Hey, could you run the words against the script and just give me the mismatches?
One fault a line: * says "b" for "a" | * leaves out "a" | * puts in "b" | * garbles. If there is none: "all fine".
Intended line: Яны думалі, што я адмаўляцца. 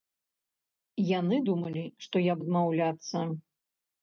all fine